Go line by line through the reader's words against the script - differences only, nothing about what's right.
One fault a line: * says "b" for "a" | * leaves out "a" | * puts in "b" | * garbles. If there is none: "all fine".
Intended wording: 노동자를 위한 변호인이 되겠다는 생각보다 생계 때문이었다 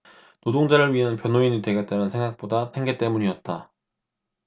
all fine